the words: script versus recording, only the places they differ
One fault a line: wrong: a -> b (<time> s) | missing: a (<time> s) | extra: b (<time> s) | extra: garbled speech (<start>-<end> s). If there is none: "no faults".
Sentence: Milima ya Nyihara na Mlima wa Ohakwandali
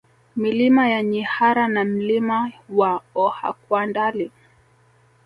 no faults